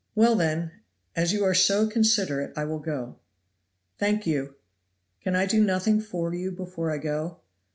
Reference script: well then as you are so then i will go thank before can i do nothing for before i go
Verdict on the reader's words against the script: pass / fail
fail